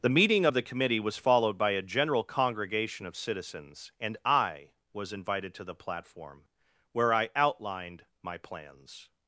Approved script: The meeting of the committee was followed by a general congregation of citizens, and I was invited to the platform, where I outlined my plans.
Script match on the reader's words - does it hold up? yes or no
yes